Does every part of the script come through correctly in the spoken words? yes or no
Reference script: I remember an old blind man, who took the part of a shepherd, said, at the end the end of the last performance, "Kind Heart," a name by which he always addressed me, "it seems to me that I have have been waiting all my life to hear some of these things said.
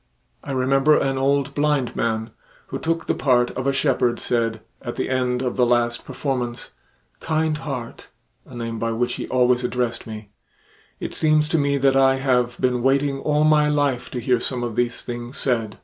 no